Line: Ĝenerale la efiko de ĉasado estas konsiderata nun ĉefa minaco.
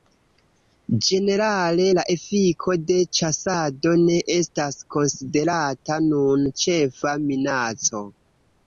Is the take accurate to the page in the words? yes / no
no